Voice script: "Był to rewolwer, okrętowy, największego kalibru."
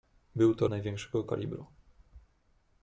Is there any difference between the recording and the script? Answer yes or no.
yes